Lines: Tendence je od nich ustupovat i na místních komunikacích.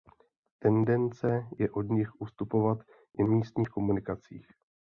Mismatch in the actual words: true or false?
true